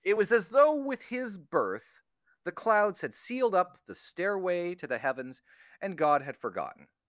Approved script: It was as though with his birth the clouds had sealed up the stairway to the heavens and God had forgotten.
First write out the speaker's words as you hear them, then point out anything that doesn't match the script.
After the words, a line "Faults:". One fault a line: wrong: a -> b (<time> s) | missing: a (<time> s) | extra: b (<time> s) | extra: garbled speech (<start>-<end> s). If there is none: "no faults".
It was as though with his birth the clouds had sealed up the stairway to the heavens and God had forgotten.
Faults:
no faults